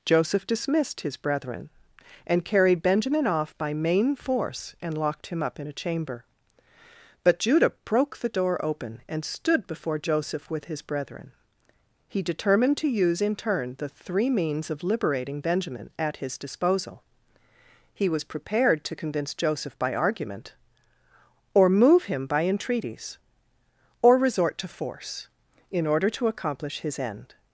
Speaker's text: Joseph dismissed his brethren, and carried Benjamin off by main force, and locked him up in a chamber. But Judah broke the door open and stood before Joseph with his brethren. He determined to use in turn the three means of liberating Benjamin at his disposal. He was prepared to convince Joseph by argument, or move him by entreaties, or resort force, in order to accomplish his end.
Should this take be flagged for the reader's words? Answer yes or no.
yes